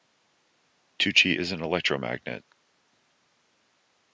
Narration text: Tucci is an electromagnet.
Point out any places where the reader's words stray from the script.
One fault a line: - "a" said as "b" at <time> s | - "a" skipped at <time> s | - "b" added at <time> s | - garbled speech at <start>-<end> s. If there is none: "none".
none